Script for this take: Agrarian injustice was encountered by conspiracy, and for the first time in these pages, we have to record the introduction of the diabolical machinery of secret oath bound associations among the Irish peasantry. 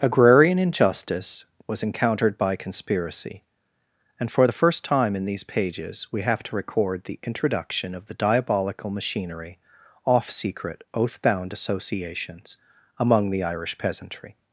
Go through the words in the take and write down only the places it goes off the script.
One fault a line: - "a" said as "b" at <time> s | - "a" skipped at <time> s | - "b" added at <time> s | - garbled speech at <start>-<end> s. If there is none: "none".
- "of" said as "off" at 10.1 s